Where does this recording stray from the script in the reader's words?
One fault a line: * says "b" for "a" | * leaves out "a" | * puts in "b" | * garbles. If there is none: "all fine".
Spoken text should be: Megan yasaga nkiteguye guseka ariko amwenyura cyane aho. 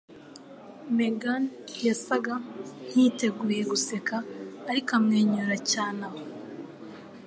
all fine